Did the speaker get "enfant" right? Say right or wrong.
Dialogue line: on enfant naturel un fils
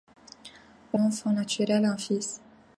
right